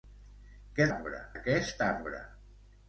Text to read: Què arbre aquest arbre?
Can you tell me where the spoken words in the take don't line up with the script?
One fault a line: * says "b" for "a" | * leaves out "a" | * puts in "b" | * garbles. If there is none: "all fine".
all fine